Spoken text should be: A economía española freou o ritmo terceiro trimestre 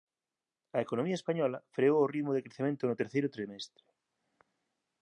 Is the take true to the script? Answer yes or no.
no